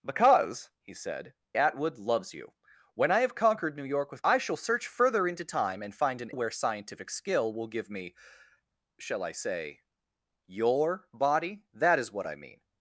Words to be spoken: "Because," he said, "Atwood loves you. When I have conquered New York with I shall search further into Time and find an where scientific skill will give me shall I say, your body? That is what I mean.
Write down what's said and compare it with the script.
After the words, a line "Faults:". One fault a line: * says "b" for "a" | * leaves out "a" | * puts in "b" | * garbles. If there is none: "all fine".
"Because," he said, "Atwood loves you. When I have conquered New York with I shall search further into Time and find an where scientific skill will give me shall I say, your body? That is what I mean.
Faults:
all fine